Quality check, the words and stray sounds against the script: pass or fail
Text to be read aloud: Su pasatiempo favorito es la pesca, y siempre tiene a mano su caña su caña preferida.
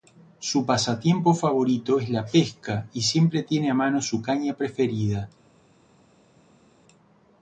fail